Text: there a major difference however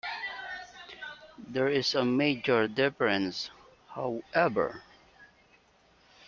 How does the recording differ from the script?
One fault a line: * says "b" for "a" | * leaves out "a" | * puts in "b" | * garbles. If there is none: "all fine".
* puts in "is"